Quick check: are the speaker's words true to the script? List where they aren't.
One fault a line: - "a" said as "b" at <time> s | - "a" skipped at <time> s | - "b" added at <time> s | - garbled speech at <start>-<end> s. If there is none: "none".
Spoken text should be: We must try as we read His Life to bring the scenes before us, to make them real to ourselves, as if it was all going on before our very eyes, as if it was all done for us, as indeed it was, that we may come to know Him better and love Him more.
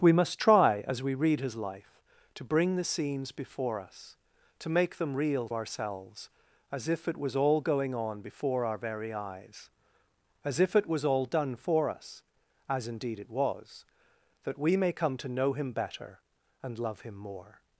- "to" skipped at 5.5 s